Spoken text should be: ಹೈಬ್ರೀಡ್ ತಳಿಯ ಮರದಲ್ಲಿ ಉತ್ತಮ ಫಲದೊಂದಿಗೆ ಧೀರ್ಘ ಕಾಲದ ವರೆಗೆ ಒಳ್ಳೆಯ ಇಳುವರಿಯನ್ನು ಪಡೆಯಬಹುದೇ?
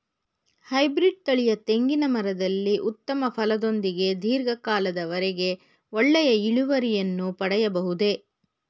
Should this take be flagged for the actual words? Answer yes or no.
yes